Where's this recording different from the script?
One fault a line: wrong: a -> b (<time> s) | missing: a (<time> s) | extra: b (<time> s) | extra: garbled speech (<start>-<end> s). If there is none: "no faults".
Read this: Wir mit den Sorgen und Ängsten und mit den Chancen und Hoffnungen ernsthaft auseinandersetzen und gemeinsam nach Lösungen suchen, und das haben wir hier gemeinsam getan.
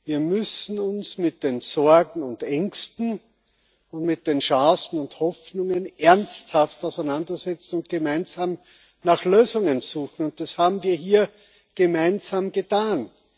extra: müssen uns (0.2 s)